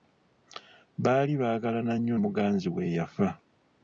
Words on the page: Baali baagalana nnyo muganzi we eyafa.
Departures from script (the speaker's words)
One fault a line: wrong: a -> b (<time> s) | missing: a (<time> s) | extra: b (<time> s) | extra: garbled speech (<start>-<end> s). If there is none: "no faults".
no faults